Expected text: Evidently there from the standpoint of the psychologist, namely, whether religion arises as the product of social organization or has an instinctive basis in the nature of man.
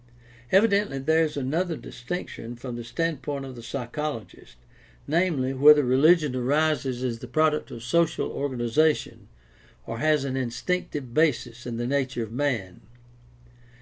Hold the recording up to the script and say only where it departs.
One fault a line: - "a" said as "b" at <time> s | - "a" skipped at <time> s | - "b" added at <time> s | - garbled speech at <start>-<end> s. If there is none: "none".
- "is another distinction" added at 1.2 s